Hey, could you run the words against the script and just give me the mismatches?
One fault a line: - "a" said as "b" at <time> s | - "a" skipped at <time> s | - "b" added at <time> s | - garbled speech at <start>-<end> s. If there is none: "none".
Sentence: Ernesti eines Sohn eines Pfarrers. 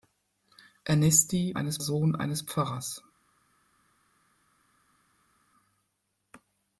none